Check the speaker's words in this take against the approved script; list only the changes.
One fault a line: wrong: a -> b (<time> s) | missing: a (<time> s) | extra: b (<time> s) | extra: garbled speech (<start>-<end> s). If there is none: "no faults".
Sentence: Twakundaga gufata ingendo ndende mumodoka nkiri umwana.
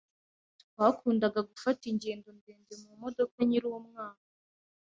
no faults